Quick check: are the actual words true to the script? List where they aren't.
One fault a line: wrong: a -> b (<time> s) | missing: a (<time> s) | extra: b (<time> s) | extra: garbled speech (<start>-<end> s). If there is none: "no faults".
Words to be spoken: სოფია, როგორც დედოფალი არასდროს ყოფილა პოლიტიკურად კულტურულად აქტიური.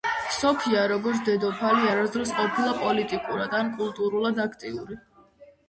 extra: ან (3.6 s)